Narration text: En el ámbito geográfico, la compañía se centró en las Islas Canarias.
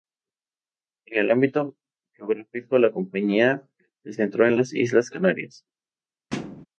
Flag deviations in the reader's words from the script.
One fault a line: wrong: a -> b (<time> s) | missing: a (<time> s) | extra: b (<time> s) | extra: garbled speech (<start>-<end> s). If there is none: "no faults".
no faults